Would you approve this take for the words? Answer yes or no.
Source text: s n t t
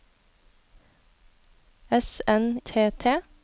yes